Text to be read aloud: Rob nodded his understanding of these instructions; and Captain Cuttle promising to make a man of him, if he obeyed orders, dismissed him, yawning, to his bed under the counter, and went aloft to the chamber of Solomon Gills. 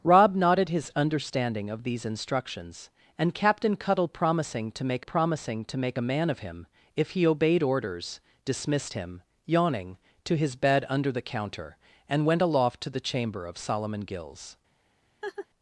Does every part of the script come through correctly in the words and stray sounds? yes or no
no